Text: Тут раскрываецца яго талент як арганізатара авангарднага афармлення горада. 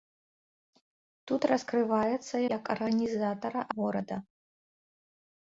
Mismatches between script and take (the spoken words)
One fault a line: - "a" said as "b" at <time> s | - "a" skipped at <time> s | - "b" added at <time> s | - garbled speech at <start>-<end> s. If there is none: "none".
- "яго талент" skipped at 2.4 s
- "авангарднага афармлення" skipped at 3.6 s